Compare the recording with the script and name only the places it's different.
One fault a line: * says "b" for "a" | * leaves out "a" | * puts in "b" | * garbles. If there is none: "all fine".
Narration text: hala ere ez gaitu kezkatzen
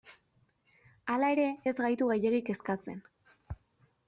* puts in "gehiegi"